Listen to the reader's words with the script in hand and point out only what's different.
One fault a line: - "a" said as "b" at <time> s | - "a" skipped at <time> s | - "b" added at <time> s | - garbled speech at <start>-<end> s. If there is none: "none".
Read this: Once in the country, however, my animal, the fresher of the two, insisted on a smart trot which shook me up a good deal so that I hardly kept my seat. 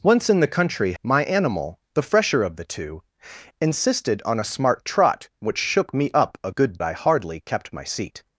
- "however" skipped at 0.9 s
- "deal so that" skipped at 6.8 s